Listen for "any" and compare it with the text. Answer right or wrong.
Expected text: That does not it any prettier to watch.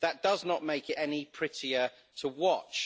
right